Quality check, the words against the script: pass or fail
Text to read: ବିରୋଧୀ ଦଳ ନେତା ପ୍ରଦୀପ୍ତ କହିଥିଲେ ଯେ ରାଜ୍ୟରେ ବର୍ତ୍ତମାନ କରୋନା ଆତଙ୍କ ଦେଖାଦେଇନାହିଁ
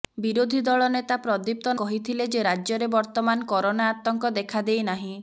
pass